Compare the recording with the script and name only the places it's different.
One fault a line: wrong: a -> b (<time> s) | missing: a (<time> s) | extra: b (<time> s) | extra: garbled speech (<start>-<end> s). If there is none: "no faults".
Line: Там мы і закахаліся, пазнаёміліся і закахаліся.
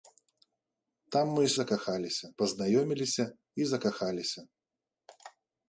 no faults